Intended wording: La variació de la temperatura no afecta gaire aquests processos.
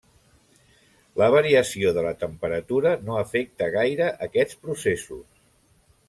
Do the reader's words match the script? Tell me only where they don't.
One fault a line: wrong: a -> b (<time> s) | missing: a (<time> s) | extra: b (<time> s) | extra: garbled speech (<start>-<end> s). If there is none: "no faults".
no faults